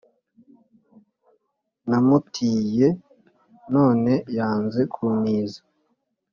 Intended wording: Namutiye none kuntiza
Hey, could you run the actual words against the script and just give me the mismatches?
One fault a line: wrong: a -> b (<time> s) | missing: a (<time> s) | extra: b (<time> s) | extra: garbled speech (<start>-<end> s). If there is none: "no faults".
extra: yanze (4.4 s)